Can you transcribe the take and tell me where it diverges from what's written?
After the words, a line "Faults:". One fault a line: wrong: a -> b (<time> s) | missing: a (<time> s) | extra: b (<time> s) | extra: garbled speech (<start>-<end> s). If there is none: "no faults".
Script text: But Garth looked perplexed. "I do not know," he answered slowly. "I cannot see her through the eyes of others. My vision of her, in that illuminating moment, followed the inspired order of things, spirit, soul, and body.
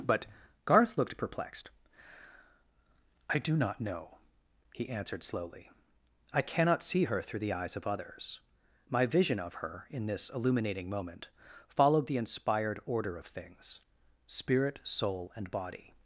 But Garth looked perplexed. "I do not know," he answered slowly. "I cannot see her through the eyes of others. My vision of her, in this illuminating moment, followed the inspired order of things, spirit, soul, and body.
Faults:
wrong: that -> this (10.1 s)